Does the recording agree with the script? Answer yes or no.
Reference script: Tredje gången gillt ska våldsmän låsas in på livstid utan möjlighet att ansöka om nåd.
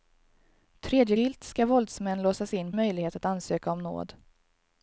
no